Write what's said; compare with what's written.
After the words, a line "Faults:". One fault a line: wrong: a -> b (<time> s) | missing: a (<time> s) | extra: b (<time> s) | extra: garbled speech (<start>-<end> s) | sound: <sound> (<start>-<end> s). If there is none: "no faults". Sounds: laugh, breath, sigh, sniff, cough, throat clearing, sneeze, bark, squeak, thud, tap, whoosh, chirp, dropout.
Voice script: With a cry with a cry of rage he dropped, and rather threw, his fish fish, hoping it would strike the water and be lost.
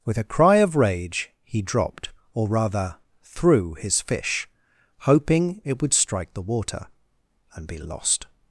With a cry of rage he dropped, or rather threw, his fish, hoping it would strike the water and be lost.
Faults:
missing: with a cry (0.6 s)
wrong: and -> or (2.3 s)
missing: fish (4.5 s)